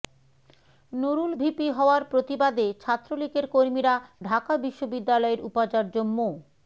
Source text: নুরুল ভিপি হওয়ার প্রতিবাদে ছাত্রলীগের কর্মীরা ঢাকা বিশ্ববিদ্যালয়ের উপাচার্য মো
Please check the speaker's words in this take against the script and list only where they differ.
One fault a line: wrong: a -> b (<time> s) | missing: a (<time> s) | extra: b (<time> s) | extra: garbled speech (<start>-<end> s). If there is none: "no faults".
no faults